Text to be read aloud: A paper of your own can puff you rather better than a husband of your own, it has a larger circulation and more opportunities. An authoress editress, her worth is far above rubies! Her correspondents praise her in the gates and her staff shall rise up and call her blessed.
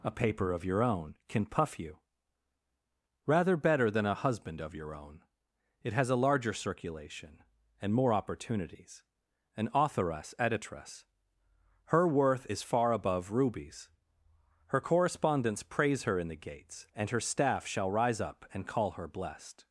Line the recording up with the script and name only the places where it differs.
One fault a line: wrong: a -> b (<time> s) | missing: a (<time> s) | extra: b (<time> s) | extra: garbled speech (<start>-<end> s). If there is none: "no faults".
no faults